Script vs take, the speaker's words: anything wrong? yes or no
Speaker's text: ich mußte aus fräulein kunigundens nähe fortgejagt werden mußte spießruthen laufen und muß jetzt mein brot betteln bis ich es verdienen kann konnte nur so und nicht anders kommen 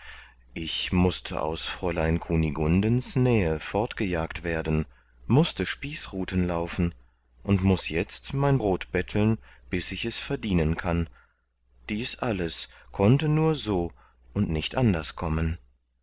yes